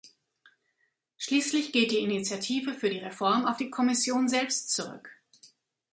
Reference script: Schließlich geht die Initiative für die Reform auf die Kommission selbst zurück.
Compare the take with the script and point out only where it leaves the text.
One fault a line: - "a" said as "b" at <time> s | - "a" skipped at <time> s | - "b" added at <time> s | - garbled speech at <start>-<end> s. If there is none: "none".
none